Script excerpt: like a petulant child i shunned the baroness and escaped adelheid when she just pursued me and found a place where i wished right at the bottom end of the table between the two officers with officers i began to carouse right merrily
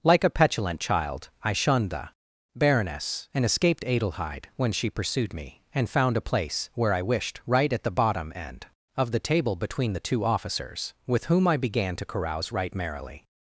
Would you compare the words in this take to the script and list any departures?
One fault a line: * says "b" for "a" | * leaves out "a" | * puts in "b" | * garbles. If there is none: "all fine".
* leaves out "just"
* says "whom" for "officers"